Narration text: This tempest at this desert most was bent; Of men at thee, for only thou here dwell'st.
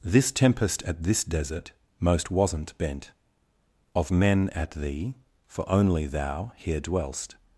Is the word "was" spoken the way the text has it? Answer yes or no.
no